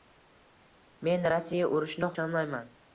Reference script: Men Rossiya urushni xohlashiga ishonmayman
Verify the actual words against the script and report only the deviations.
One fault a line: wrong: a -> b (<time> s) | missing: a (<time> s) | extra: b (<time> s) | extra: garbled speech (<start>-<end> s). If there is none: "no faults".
missing: xohlashiga (2.1 s)